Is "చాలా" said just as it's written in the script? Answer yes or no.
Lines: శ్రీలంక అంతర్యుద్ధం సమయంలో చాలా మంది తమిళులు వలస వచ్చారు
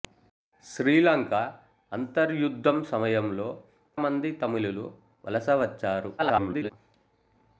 no